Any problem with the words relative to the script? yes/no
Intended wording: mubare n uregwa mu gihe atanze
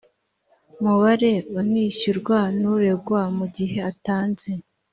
yes